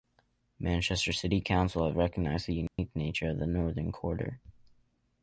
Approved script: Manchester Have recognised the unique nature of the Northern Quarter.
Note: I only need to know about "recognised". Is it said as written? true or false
true